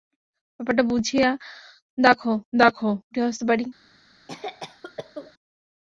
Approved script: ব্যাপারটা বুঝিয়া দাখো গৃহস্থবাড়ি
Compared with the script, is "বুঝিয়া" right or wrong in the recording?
right